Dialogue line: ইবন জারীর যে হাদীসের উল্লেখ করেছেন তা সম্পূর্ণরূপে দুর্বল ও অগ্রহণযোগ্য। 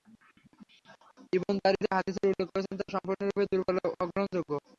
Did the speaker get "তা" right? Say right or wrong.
right